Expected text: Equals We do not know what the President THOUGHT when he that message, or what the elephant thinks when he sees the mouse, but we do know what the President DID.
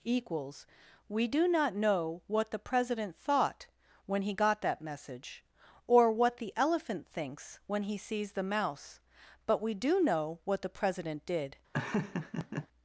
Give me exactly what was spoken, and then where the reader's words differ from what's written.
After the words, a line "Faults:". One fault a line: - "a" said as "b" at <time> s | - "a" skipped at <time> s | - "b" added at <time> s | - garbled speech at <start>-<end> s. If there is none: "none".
Equals We do not know what the President THOUGHT when he got that message, or what the elephant thinks when he sees the mouse, but we do know what the President DID.
Faults:
- "got" added at 4.3 s